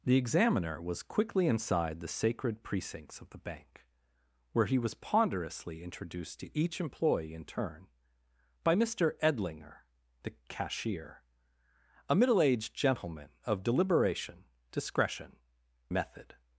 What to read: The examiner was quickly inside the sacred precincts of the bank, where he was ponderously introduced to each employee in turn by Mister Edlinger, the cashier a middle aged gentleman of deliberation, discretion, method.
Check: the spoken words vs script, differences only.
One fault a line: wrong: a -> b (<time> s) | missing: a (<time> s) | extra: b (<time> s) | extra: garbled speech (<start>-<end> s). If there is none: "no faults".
no faults